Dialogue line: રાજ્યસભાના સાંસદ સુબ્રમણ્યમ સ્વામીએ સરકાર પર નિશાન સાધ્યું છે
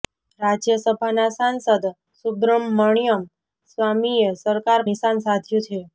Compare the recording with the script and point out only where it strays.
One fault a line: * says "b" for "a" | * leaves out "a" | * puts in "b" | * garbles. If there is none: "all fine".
* leaves out "પર"